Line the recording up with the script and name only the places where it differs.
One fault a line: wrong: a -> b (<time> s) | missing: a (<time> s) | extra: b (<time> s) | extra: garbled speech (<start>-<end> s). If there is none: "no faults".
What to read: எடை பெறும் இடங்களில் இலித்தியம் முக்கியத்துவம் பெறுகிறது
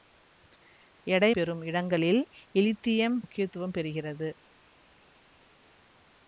no faults